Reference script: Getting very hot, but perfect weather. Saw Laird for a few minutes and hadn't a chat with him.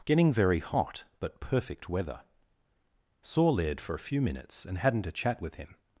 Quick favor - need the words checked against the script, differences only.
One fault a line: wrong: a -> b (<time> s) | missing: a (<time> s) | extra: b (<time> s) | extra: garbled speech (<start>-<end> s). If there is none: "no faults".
no faults